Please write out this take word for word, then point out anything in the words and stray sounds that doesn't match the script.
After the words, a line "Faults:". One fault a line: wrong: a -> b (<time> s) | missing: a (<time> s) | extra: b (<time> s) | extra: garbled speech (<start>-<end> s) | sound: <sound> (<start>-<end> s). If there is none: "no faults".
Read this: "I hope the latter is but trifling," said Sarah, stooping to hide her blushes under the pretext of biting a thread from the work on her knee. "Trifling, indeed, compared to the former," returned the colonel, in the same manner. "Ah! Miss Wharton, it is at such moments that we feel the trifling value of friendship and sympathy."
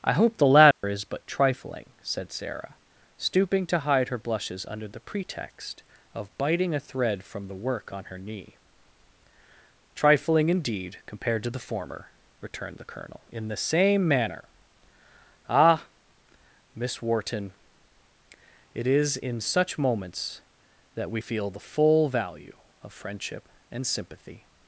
"I hope the latter is but trifling," said Sarah, stooping to hide her blushes under the pretext of biting a thread from the work on her knee. "Trifling, indeed, compared to the former," returned the colonel, in the same manner. "Ah! Miss Wharton, it is in such moments that we feel the full value of friendship and sympathy."
Faults:
sound: dropout (0.7-0.8 s)
wrong: at -> in (19.2 s)
wrong: trifling -> full (21.6 s)